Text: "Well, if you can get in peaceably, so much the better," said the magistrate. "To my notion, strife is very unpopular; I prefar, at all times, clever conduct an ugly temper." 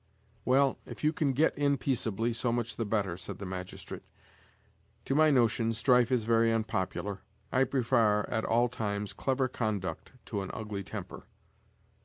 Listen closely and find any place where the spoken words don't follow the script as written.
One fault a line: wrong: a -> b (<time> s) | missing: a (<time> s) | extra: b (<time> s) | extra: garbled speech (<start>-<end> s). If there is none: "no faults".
extra: to (10.3 s)